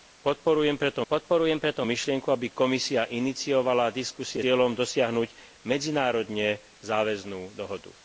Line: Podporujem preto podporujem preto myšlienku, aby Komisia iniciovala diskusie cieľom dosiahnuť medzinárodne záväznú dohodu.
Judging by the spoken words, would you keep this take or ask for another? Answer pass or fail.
pass